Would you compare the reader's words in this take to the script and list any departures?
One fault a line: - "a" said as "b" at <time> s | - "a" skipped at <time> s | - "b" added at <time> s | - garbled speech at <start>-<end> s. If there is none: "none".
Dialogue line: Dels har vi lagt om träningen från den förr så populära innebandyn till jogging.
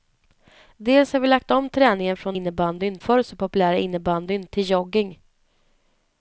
- "den" said as "innebandyn" at 2.3 s